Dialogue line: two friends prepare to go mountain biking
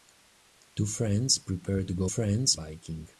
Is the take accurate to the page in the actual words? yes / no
no